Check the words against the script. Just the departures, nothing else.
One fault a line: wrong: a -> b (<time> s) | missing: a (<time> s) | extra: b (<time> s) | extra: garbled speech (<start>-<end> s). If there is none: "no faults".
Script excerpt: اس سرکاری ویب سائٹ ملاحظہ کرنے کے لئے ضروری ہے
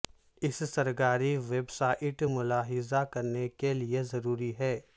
no faults